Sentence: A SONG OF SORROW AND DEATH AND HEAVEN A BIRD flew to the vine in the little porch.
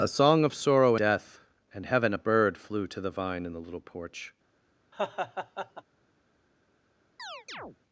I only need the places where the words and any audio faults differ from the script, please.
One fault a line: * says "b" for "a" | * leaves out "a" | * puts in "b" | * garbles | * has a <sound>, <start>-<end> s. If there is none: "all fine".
* leaves out "AND"
* has a laugh, 4.9-5.8 s
* has a chirp, 7.2-7.8 s